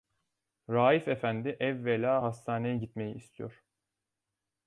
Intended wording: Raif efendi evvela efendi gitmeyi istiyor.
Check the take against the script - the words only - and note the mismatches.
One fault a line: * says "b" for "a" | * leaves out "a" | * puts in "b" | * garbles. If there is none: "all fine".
* says "hastaneye" for "efendi"